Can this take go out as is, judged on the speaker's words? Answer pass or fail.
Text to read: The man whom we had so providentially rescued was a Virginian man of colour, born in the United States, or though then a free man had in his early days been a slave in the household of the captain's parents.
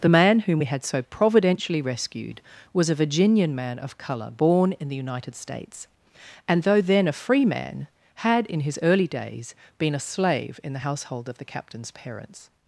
fail